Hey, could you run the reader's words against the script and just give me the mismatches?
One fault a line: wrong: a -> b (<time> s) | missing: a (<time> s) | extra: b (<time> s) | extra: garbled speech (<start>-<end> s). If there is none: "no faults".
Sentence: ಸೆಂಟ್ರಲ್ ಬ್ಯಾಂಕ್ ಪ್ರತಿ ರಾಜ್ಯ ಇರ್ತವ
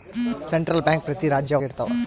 no faults